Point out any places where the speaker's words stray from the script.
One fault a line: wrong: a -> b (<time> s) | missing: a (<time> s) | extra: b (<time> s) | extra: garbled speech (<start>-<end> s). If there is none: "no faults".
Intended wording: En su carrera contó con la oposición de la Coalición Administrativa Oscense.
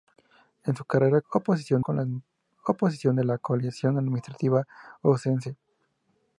wrong: contó -> oposición (1.3 s)